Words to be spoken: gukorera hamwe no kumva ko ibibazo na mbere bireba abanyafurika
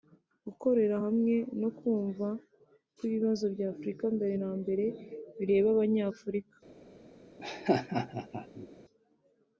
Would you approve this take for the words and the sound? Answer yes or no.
no